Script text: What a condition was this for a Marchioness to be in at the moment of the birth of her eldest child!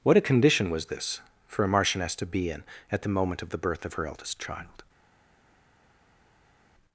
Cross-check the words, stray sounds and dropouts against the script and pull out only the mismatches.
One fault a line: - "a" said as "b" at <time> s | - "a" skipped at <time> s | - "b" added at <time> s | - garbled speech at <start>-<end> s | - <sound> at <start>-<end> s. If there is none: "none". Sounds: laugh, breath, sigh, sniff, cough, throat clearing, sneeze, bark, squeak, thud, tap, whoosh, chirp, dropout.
none